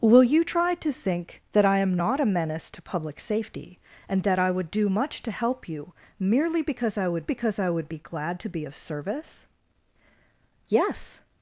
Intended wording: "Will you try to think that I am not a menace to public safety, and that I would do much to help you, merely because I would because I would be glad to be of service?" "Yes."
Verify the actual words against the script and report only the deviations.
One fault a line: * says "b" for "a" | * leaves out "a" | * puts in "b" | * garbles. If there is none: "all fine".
all fine